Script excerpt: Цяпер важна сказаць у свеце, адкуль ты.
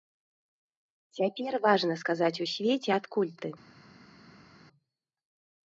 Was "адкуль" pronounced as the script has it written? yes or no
yes